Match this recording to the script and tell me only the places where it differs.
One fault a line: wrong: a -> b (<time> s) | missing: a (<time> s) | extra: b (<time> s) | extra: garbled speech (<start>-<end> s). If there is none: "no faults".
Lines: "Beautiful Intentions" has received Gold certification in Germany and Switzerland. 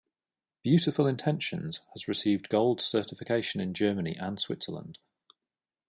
no faults